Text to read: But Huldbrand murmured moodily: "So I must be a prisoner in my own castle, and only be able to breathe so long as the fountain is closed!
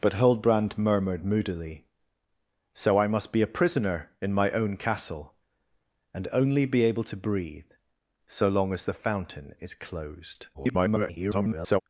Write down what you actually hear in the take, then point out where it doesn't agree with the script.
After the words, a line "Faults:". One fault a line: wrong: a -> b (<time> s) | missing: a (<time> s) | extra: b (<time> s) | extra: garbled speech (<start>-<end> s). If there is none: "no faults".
But Huldbrand murmured moodily: "So I must be a prisoner in my own castle, and only be able to breathe so long as the fountain is closed! [garbled]
Faults:
extra: garbled speech (10.5-11.8 s)